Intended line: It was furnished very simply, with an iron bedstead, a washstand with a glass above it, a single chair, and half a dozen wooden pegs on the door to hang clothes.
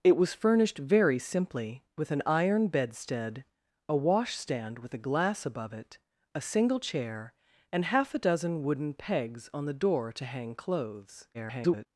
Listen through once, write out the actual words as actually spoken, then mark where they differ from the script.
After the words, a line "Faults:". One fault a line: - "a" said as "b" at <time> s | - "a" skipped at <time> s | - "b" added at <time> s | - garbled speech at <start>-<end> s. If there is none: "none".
It was furnished very simply, with an iron bedstead, a washstand with a glass above it, a single chair, and half a dozen wooden pegs on the door to hang clothes. [garbled]
Faults:
- garbled speech at 11.3-11.9 s